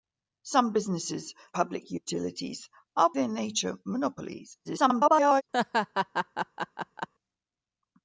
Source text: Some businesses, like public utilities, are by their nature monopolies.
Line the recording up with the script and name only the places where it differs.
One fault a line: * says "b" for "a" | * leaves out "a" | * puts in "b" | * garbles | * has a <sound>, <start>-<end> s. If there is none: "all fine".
* leaves out "like"
* leaves out "by"
* garbles
* has a laugh, 5.5-7.1 s